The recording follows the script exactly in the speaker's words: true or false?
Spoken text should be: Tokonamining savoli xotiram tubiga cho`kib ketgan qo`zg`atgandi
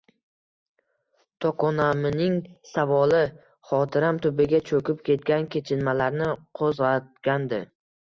false